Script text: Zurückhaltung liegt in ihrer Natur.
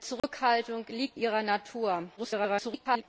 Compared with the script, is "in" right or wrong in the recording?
wrong